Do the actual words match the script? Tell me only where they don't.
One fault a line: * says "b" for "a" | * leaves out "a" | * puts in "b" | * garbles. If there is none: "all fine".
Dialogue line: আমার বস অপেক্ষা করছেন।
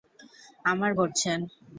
* leaves out "বস অপেক্ষা"